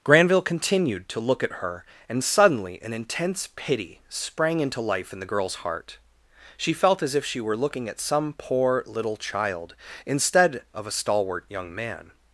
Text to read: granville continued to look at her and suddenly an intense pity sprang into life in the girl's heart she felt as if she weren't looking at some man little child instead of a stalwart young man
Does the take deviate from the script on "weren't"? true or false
true